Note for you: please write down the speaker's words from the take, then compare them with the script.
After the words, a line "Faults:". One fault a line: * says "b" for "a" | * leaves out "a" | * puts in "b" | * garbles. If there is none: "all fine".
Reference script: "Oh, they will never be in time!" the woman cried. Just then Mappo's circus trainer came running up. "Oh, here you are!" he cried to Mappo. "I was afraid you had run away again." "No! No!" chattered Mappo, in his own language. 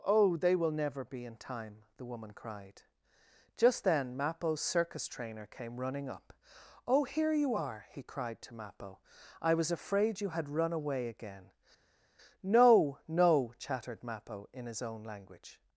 "Oh, they will never be in time!" the woman cried. Just then Mappo's circus trainer came running up. "Oh, here you are!" he cried to Mappo. "I was afraid you had run away again." "No! No!" chattered Mappo, in his own language.
Faults:
all fine